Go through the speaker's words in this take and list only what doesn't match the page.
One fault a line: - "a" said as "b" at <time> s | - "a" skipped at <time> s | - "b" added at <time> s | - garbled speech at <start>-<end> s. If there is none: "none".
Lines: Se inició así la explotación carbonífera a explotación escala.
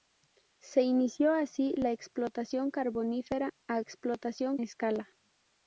none